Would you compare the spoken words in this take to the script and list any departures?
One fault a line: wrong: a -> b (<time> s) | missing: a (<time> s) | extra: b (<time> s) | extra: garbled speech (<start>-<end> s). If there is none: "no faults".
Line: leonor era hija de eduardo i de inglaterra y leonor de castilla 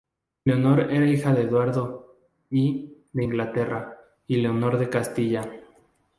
no faults